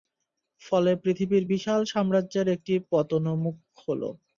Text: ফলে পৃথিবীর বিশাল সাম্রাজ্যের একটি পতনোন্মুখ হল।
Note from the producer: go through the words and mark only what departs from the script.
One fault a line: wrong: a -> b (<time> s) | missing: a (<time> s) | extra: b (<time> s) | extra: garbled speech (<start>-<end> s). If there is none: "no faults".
no faults